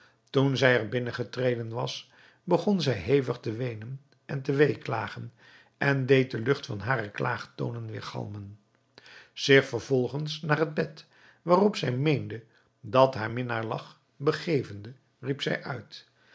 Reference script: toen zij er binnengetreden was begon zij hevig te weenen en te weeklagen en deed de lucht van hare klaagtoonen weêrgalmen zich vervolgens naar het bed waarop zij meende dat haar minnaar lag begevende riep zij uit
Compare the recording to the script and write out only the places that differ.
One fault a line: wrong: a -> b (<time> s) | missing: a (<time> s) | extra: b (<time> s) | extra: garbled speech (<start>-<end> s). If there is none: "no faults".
no faults